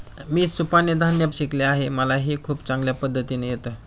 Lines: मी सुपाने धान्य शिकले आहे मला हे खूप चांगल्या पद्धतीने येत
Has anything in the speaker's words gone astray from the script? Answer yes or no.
no